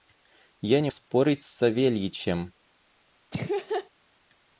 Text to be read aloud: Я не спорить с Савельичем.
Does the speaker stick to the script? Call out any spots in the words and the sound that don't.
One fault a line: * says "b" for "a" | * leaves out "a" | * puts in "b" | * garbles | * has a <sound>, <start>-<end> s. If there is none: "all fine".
* has a laugh, 3.3-3.9 s